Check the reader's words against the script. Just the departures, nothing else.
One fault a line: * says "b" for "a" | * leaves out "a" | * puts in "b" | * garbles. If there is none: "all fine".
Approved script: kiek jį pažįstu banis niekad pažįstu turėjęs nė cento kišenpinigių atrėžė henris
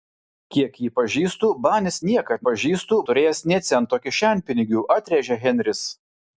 all fine